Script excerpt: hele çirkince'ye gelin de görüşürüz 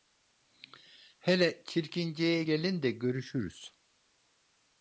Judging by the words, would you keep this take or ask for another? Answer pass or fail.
pass